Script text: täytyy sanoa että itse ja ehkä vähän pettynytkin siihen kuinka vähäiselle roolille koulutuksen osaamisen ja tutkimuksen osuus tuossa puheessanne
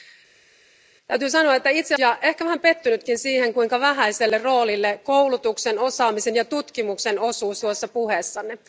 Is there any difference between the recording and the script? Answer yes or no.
no